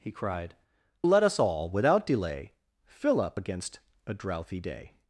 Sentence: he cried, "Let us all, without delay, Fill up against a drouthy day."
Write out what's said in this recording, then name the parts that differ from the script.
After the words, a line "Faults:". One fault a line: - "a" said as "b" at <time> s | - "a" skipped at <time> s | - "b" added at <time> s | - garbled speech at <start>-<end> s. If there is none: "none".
he cried, "Let us all, without delay, Fill up against a drouthy day."
Faults:
none